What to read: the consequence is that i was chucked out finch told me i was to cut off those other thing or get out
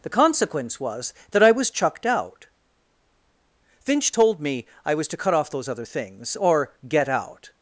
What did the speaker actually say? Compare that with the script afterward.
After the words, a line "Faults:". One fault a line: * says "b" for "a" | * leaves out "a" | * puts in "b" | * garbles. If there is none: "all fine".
the consequence was that i was chucked out finch told me i was to cut off those other things or get out
Faults:
* says "was" for "is"
* says "things" for "thing"